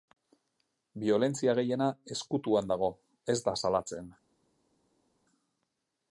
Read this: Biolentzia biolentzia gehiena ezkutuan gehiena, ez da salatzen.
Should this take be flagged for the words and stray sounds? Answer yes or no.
yes